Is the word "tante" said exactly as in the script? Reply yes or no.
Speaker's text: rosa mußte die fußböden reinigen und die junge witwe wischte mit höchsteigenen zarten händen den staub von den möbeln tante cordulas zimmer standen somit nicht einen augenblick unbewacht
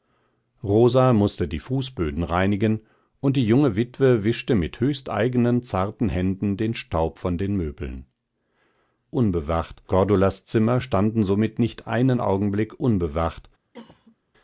no